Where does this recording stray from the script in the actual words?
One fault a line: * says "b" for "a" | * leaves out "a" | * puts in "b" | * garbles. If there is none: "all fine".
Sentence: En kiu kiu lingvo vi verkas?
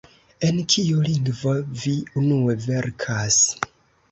* leaves out "kiu"
* puts in "unue"